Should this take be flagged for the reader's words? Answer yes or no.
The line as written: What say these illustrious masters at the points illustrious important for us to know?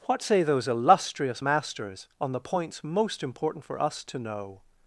yes